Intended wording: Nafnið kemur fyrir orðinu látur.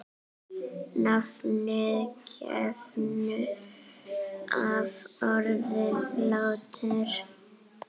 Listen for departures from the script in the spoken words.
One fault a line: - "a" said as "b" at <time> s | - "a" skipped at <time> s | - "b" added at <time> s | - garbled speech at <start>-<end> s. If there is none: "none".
- "fyrir" said as "af" at 4.6 s